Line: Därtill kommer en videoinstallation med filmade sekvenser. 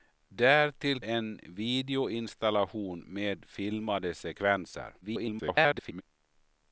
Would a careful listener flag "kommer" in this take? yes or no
yes